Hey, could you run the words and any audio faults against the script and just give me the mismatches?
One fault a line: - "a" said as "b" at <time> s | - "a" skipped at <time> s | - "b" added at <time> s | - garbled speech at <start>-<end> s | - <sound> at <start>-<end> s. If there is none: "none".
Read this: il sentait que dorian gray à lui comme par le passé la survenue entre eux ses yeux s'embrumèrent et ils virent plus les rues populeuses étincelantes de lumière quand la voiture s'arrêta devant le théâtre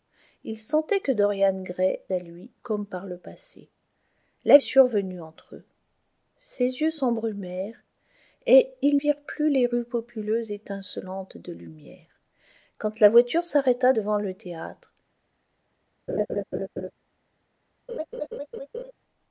- laugh at 16.1-16.9 s
- laugh at 17.9-18.9 s